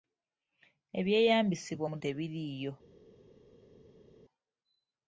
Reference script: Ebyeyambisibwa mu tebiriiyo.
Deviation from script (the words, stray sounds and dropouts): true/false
false